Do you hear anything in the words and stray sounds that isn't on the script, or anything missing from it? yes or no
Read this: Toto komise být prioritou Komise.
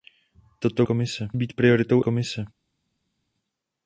no